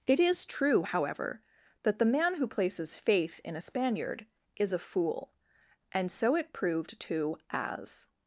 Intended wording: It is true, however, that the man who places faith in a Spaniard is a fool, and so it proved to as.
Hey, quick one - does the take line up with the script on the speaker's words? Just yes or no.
yes